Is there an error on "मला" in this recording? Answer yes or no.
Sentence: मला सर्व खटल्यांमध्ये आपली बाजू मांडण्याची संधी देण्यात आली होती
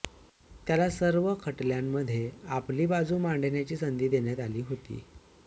yes